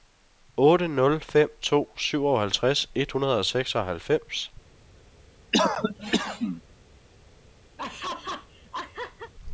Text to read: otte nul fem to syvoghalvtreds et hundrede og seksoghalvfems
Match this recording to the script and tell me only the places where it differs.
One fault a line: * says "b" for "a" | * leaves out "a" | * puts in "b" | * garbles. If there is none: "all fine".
all fine